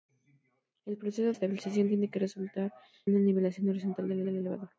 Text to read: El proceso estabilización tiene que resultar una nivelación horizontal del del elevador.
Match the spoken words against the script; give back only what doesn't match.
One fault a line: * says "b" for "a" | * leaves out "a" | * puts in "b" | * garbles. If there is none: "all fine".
all fine